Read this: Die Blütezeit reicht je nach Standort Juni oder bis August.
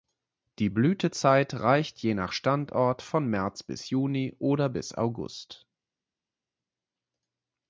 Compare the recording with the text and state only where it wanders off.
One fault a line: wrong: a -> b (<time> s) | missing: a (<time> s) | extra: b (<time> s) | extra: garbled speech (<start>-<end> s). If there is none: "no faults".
extra: von März bis (3.0 s)